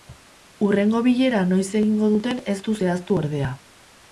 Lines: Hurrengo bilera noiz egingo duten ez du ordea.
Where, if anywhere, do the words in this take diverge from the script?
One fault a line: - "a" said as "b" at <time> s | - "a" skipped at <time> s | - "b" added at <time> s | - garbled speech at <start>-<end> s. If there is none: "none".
- "zehaztu" added at 2.8 s